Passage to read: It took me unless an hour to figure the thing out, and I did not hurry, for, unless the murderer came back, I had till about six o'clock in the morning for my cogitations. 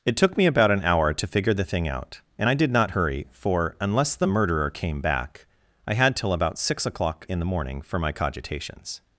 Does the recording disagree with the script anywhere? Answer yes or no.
yes